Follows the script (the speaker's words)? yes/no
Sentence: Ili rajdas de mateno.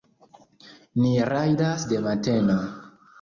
no